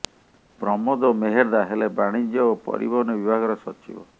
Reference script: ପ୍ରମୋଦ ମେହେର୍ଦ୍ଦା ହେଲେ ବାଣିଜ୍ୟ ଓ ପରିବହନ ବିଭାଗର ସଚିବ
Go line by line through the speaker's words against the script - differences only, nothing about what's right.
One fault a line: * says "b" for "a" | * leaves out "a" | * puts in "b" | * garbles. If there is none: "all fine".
all fine